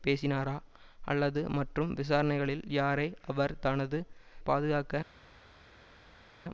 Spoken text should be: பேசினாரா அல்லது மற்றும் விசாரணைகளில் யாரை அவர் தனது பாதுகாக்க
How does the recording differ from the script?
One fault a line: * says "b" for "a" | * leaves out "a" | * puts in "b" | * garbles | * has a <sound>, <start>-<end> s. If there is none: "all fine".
all fine